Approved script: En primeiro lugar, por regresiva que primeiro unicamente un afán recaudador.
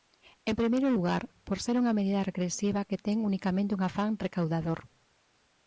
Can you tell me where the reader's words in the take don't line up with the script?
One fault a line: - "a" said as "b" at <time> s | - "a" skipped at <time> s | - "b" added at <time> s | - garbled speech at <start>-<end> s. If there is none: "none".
- "ser unha medida" added at 1.6 s
- "primeiro" said as "ten" at 3.0 s